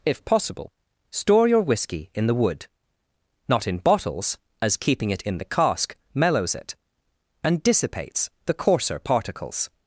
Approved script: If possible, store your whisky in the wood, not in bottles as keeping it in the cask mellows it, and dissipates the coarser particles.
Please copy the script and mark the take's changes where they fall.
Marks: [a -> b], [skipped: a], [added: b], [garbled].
If possible, store your whisky in the wood, not in bottles as keeping it in the cask mellows it, and dissipates the coarser particles.